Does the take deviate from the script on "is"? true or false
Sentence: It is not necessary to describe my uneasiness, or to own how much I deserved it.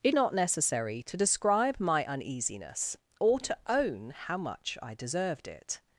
true